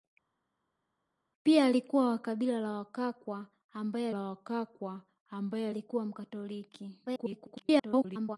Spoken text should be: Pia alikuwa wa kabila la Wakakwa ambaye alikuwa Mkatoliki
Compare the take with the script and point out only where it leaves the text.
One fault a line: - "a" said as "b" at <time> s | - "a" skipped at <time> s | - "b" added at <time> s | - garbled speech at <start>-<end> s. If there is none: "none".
- "la Wakakwa ambaye" added at 4.1 s
- garbled speech at 7.1-8.4 s